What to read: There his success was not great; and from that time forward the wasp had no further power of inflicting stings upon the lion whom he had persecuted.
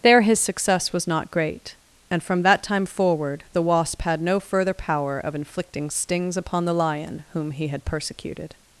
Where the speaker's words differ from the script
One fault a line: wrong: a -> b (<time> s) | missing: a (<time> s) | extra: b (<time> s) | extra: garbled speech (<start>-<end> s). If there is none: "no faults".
no faults